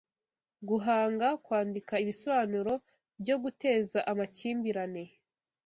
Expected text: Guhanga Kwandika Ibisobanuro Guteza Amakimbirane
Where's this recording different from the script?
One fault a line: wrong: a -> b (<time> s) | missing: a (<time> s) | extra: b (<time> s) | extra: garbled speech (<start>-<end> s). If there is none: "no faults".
extra: byo (3.2 s)